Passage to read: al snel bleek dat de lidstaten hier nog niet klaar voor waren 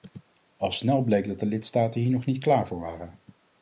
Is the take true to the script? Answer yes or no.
yes